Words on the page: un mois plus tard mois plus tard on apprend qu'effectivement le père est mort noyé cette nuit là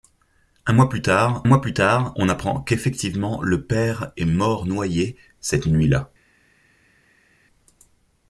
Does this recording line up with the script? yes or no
yes